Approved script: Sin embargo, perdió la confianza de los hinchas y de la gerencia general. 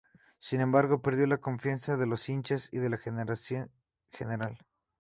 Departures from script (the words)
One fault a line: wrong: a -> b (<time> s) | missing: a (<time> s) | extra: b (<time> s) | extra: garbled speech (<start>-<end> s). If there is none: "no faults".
no faults